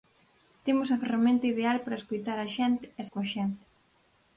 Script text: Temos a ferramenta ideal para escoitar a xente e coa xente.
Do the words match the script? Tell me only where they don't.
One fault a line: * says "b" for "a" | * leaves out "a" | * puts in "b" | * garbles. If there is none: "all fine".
all fine